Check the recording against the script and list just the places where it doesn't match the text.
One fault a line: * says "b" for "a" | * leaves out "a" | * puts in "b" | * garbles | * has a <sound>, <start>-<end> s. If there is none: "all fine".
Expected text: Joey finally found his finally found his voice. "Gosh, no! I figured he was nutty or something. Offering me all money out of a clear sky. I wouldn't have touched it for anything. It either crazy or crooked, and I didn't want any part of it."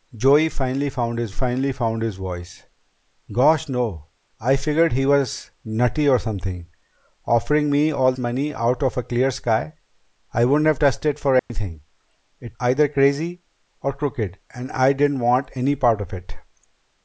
* has a dropout, 11.4-11.5 s